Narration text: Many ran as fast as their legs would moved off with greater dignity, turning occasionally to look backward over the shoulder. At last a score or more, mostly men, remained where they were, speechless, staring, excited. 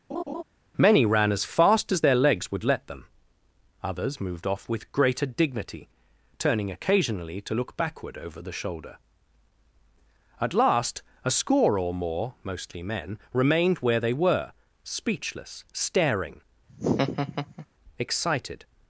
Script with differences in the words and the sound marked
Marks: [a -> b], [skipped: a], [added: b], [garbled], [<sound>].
[laugh] Many ran as fast as their legs would [added: let them others] moved off with greater dignity, turning occasionally to look backward over the shoulder. At last a score or more, mostly men, remained where they were, speechless, staring, [laugh] excited.